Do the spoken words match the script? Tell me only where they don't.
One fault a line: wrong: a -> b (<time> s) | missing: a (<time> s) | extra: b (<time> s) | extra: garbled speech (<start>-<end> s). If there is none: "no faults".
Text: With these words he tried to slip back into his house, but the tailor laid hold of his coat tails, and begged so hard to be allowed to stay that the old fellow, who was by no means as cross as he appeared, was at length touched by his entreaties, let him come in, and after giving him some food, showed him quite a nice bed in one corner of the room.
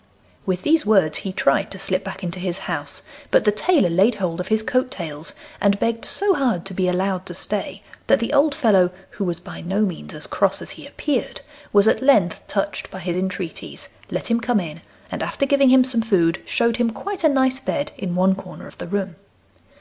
no faults